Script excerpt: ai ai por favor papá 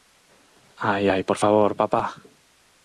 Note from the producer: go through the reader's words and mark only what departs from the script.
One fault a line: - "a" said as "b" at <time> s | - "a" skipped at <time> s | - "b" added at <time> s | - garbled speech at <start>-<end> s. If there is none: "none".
none